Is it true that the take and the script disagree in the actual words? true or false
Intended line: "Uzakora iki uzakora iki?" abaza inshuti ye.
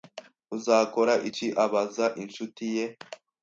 true